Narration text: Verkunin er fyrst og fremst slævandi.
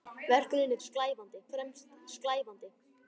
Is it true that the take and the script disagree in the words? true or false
true